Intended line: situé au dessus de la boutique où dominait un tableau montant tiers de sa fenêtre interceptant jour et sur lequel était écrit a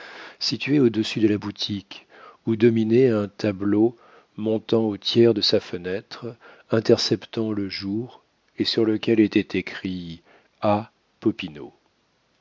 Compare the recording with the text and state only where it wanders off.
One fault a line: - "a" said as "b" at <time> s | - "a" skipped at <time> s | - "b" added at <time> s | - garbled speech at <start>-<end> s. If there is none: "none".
- "au" added at 4.8 s
- "le" added at 7.5 s